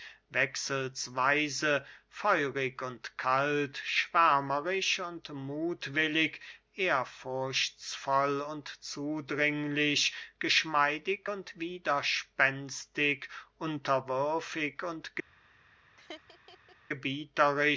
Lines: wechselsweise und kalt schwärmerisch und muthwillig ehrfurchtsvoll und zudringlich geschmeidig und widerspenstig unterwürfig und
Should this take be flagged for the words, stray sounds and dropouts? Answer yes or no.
yes